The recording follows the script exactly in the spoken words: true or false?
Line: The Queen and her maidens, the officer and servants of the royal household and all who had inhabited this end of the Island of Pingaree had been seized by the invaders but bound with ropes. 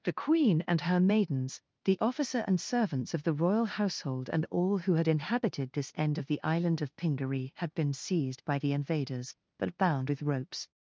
true